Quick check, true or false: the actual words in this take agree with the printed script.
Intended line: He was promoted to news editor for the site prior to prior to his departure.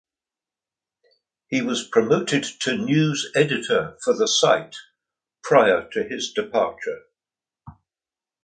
false